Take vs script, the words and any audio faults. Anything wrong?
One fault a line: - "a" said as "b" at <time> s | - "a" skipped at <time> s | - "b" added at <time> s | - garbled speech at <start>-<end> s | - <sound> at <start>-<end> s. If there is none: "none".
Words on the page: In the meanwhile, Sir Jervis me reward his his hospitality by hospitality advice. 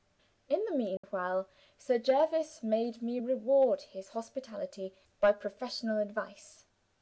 - dropout at 1.0-1.0 s
- "made" added at 2.6 s
- "his" skipped at 4.1 s
- "hospitality" said as "professional" at 5.3 s